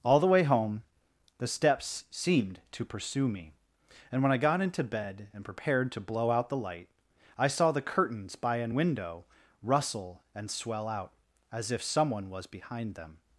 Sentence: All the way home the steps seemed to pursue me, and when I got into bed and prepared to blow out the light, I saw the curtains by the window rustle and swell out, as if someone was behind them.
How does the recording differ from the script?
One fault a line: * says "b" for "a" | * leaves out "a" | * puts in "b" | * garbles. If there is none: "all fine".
* says "an" for "the"